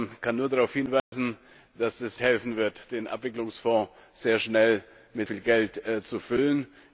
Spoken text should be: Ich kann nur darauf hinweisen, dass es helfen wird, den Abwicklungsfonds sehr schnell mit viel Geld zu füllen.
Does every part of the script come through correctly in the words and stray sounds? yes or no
no